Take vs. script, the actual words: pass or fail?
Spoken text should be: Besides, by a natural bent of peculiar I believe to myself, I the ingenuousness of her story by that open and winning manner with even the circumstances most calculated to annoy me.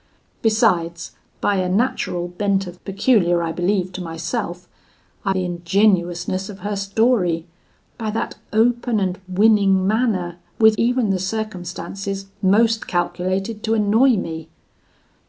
pass